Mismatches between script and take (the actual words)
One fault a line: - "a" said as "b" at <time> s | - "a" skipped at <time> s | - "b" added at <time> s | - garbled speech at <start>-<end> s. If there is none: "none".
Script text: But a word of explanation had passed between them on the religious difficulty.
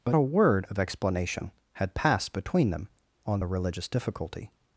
none